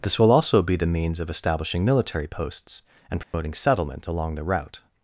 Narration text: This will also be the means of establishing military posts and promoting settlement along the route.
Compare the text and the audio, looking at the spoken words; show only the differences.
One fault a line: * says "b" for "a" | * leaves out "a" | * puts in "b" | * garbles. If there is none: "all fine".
all fine